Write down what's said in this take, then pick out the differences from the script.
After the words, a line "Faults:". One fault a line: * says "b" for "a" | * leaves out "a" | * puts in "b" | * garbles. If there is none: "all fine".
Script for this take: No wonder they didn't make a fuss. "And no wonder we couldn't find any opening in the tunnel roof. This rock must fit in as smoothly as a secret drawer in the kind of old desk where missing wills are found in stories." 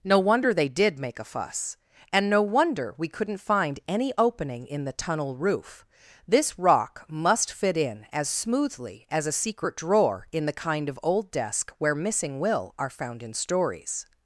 No wonder they did make a fuss. "And no wonder we couldn't find any opening in the tunnel roof. This rock must fit in as smoothly as a secret drawer in the kind of old desk where missing will are found in stories."
Faults:
* says "did" for "didn't"
* says "will" for "wills"